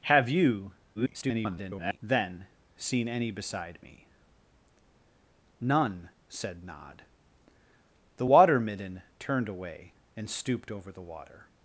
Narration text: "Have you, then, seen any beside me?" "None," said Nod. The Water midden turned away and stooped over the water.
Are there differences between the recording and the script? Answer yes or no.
yes